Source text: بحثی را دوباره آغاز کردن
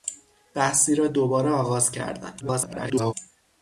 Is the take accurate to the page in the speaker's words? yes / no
no